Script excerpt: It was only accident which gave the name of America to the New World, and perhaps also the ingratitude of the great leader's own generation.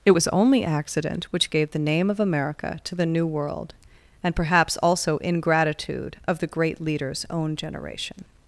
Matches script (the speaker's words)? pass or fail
fail